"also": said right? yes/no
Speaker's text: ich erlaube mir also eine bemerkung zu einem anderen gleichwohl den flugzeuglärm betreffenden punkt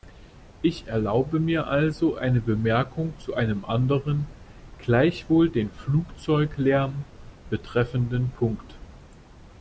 yes